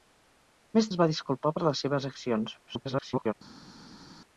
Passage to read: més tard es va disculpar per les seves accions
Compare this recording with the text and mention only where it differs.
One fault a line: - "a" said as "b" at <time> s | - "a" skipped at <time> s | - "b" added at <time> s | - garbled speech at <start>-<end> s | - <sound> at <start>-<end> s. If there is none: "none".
- "tard" skipped at 0.9 s
- garbled speech at 2.7-3.3 s